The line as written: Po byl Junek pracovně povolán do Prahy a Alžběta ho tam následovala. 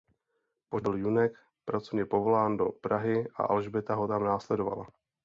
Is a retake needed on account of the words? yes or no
no